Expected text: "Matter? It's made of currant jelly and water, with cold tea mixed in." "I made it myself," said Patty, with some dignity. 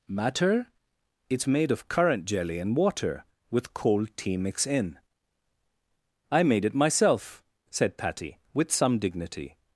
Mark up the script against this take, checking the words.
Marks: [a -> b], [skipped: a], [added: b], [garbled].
"Matter? It's made of currant jelly and water, with cold tea [mixed -> mix] in." "I made it myself," said Patty, with some dignity.